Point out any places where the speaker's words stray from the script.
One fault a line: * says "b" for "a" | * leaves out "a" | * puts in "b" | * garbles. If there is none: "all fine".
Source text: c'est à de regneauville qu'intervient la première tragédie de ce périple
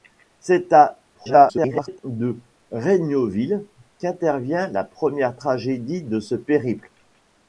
* garbles